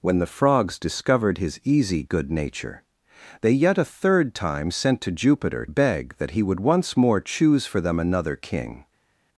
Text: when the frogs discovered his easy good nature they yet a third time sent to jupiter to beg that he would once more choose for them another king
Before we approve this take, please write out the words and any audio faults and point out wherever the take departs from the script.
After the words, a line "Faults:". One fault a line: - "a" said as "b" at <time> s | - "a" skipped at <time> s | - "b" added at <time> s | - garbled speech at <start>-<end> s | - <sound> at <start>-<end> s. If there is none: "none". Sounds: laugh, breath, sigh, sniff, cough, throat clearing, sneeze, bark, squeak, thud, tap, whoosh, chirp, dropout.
when the frogs discovered his easy good nature they yet a third time sent to jupiter beg that he would once more choose for them another king
Faults:
- "to" skipped at 5.6 s